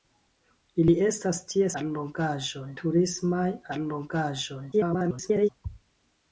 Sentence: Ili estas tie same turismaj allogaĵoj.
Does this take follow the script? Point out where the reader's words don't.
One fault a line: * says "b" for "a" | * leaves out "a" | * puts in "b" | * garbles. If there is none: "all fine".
* says "allogaĵoj" for "same"
* garbles